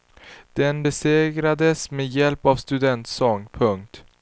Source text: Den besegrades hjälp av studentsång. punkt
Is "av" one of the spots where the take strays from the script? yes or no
no